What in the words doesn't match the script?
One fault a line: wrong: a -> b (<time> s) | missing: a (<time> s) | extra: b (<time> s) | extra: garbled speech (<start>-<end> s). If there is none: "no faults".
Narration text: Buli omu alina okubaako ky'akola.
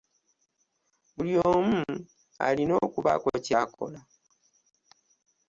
no faults